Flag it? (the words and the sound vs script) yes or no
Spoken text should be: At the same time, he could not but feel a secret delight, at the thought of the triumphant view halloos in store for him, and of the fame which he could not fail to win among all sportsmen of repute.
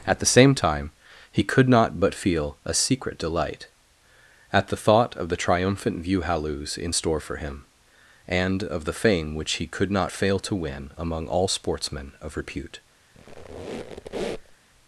yes